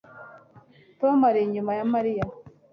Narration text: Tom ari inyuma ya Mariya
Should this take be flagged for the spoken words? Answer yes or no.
no